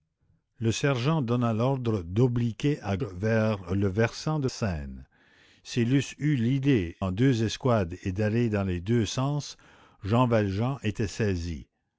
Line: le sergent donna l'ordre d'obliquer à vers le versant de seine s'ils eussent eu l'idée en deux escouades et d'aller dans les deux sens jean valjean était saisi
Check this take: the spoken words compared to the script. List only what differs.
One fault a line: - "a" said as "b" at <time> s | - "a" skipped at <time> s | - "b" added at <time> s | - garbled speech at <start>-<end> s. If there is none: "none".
none